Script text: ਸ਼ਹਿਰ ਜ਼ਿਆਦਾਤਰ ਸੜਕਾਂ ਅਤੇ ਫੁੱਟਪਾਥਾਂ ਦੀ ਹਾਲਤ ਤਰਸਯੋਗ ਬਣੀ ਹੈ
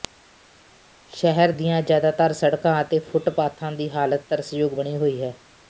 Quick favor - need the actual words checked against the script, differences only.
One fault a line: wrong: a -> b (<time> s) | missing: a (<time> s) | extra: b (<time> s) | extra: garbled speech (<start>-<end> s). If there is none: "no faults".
extra: ਦੀਆਂ (1.5 s)
extra: ਹੋਈ (5.0 s)